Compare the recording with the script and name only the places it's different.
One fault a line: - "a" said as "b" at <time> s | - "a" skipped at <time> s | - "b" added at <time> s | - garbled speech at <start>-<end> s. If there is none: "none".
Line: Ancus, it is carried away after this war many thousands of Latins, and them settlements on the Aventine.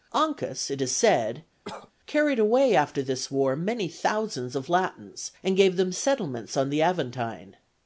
- "said" added at 1.0 s
- "gave" added at 5.5 s